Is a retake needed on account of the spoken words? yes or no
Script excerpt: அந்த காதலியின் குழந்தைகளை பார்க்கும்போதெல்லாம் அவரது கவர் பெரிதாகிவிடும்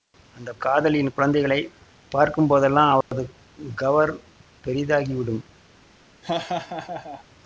no